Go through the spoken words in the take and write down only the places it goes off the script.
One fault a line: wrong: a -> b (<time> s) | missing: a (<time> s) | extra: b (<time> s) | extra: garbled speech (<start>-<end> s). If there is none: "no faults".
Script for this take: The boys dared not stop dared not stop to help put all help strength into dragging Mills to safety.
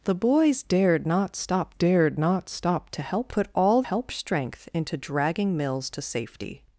no faults